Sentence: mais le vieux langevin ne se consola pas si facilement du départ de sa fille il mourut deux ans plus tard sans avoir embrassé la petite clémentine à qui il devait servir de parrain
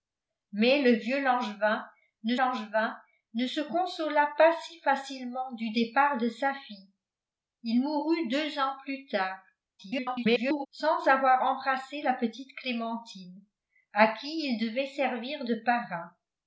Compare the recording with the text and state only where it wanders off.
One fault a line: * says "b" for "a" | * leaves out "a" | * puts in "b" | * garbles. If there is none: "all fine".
* puts in "langevin ne"
* garbles